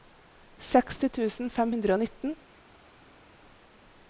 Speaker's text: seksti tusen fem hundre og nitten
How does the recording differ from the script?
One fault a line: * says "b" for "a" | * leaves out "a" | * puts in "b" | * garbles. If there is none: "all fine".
all fine